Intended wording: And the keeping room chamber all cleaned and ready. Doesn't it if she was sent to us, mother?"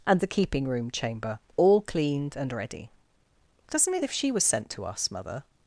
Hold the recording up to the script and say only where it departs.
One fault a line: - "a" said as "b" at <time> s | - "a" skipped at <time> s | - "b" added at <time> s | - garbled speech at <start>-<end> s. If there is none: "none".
none